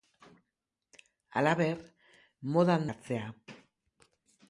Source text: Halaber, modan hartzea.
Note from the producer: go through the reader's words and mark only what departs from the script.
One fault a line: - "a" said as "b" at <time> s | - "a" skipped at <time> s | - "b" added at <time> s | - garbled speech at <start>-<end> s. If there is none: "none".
none